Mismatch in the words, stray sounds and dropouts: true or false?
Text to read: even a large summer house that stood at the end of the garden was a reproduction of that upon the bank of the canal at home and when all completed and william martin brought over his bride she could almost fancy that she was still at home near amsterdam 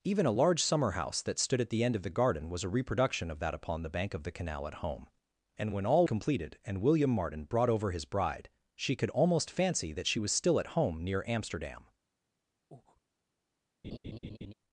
true